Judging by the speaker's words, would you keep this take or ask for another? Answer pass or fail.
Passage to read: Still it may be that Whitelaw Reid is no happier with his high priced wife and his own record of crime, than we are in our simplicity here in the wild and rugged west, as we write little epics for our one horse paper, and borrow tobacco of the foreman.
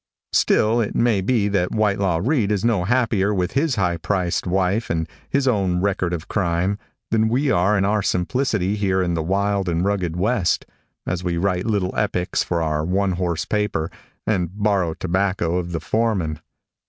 pass